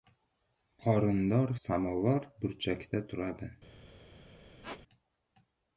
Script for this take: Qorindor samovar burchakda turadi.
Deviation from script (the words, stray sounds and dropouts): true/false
true